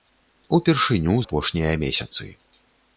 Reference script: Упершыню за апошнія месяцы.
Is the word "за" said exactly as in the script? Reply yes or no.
no